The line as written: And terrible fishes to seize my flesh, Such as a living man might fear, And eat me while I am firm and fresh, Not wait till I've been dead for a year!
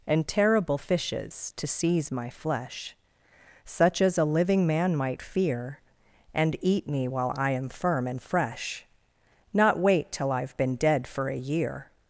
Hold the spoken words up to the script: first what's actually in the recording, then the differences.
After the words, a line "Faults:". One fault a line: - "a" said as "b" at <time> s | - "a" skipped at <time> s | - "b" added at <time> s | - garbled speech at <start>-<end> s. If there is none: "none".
And terrible fishes to seize my flesh, Such as a living man might fear, And eat me while I am firm and fresh, Not wait till I've been dead for a year!
Faults:
none